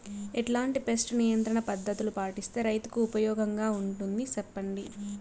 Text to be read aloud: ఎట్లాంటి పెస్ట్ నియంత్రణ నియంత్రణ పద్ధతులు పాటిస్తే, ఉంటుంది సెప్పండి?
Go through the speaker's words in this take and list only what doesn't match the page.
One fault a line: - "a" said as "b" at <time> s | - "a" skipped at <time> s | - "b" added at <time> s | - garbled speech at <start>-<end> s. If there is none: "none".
- "నియంత్రణ" skipped at 1.6 s
- "రైతుకు ఉపయోగంగా" added at 2.6 s